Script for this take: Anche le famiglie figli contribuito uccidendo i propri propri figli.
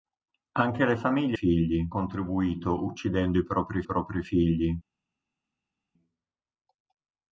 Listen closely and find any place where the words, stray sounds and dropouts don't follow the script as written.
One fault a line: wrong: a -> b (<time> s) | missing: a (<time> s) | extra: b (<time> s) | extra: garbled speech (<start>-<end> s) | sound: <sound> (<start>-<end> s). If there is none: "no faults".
no faults